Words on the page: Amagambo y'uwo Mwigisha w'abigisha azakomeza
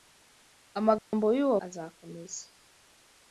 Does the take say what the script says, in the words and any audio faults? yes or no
no